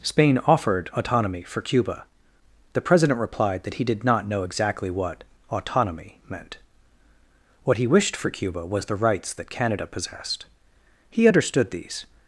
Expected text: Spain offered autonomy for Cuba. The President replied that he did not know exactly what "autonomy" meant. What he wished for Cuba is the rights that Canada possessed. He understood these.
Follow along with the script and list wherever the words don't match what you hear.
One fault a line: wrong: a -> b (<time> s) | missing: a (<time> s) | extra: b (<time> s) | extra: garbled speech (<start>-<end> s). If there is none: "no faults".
wrong: is -> was (8.6 s)